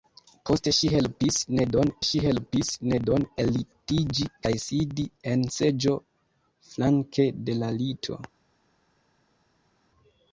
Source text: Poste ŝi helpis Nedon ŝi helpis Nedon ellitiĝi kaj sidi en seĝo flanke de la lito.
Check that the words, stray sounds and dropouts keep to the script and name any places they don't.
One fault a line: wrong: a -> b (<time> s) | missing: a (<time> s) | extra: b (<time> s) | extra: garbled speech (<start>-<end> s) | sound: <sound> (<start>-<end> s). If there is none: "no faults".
no faults